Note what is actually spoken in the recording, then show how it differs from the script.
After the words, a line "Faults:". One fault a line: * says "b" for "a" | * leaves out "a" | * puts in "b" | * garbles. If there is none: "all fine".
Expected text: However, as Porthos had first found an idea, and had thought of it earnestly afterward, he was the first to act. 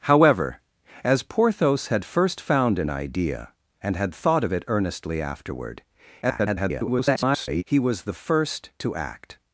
However, as Porthos had first found an idea, and had thought of it earnestly afterward, [garbled] he was the first to act.
Faults:
* garbles